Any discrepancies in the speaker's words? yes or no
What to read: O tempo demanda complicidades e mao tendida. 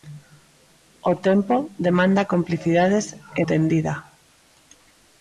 yes